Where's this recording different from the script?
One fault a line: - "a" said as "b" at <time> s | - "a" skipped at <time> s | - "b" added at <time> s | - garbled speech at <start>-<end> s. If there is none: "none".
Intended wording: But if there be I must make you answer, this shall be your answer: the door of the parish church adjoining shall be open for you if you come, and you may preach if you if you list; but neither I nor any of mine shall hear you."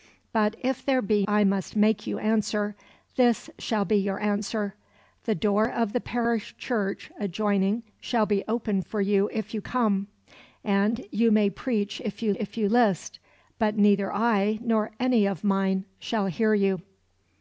none